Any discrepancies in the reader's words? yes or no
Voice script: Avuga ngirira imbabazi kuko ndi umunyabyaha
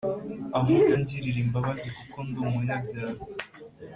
no